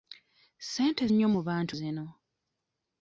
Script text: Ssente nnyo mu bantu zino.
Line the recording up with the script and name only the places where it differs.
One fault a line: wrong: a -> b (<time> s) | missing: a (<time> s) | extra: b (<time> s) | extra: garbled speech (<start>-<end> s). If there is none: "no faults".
no faults